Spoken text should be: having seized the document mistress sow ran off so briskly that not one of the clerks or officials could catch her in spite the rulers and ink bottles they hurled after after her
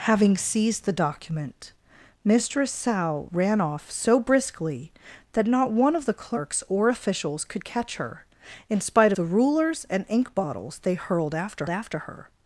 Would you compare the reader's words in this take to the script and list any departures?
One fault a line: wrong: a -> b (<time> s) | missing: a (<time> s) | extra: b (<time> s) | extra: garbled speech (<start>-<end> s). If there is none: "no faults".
no faults